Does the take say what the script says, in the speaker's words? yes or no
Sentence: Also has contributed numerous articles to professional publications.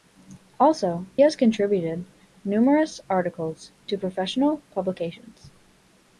yes